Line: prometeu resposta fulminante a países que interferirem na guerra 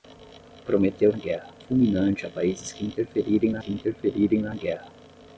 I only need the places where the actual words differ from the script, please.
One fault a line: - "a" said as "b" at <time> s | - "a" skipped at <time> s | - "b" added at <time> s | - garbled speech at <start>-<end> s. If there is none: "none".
- "resposta" said as "guerra" at 1.1 s
- "que interferirem na" added at 3.6 s